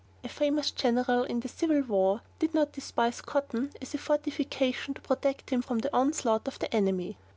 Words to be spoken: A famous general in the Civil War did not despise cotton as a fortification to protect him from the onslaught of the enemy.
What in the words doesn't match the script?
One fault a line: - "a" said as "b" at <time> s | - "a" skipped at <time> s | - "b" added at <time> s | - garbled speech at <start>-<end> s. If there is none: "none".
none